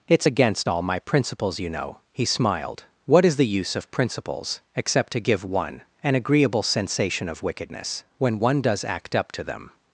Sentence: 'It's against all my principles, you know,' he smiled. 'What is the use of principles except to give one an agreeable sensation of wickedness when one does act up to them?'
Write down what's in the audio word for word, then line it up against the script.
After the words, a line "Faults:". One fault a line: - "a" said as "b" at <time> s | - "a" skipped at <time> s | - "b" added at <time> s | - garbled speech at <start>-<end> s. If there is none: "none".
'It's against all my principles, you know,' he smiled. 'What is the use of principles except to give one an agreeable sensation of wickedness when one does act up to them?'
Faults:
none